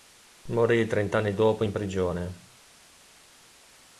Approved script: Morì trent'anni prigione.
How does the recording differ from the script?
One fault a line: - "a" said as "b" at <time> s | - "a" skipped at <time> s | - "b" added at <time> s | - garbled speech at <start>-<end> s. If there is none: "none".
- "dopo in" added at 1.4 s